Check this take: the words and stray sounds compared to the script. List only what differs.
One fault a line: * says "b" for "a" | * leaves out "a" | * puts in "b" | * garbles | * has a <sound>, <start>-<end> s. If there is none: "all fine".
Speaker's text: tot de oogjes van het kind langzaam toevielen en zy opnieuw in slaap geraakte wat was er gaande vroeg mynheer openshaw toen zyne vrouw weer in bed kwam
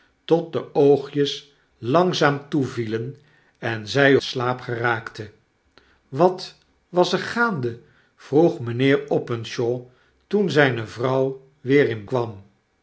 * leaves out "van het kind"
* leaves out "opnieuw in"
* leaves out "bed"